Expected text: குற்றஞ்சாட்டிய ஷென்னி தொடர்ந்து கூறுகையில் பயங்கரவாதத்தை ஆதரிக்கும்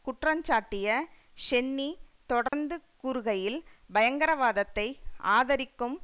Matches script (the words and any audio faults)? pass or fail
fail